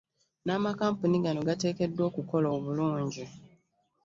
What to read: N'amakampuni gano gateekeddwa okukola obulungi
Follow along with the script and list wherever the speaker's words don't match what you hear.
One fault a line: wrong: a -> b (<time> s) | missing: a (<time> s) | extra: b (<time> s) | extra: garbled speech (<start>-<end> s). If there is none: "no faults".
no faults